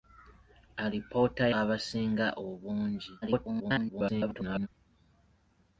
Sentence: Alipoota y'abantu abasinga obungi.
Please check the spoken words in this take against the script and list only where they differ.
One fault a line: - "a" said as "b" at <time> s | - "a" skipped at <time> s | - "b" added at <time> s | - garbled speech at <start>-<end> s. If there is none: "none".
- "y'abantu" skipped at 1.4 s
- garbled speech at 3.2-4.7 s